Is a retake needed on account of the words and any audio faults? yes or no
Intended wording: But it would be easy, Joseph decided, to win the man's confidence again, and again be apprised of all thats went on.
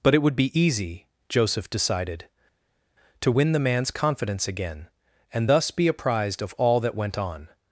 yes